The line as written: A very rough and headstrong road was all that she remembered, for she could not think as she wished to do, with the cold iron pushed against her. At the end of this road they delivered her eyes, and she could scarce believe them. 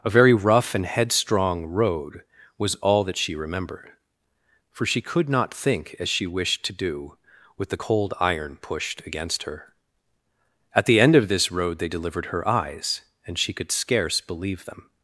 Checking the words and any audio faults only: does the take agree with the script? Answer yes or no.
yes